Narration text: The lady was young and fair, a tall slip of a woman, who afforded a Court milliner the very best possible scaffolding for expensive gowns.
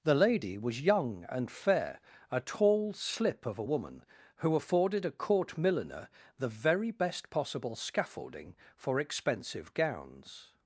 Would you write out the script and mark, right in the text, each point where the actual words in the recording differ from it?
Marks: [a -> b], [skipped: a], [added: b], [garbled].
The lady was young and fair, a tall slip of a woman, who afforded a Court milliner the very best possible scaffolding for expensive gowns.